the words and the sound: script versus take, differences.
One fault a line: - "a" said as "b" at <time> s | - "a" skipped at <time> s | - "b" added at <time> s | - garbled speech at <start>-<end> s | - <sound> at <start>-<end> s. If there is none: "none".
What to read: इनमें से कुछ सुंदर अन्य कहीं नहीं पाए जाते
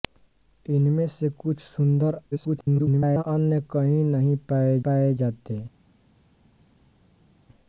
- garbled speech at 2.3-3.2 s
- "पाए" added at 4.9 s